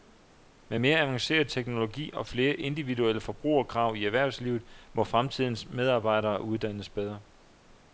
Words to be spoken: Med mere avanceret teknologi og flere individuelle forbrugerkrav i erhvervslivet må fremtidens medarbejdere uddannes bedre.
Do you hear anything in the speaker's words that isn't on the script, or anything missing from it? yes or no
no